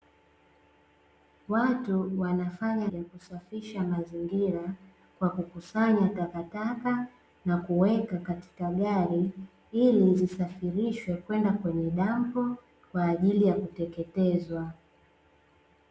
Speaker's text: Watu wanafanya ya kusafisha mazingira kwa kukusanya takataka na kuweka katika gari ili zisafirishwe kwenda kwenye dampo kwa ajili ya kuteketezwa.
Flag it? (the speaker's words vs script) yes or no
no